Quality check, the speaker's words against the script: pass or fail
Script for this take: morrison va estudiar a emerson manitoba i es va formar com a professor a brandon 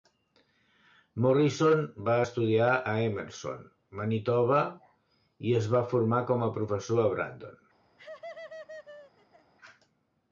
pass